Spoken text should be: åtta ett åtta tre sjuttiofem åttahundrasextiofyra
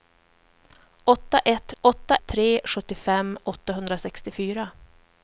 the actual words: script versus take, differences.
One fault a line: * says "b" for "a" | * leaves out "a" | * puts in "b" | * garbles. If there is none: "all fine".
all fine